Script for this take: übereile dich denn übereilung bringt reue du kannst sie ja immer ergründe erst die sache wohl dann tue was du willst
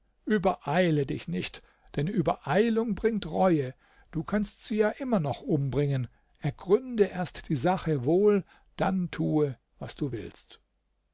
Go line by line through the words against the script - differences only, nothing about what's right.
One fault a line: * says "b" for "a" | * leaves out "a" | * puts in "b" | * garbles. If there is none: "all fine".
* puts in "nicht"
* puts in "noch umbringen"